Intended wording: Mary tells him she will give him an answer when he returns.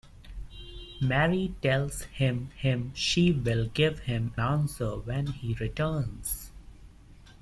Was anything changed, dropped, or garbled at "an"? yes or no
yes